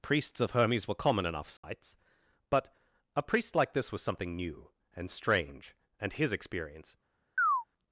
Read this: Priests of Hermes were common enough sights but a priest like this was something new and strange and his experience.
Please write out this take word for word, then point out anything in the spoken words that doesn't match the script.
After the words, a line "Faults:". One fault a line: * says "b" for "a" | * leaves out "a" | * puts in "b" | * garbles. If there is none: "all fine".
Priests of Hermes were common enough sights but a priest like this was something new and strange and his experience.
Faults:
all fine